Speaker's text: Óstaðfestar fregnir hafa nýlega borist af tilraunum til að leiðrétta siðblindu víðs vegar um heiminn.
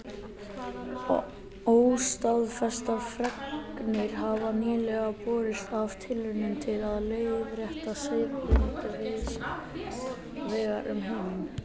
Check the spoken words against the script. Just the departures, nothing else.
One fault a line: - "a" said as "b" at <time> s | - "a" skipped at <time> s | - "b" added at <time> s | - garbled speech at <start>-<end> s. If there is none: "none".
none